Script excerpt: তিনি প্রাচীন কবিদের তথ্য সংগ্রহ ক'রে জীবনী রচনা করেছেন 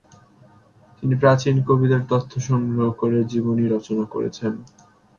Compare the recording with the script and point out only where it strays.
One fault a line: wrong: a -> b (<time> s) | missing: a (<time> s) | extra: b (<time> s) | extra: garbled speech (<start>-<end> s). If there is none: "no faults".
no faults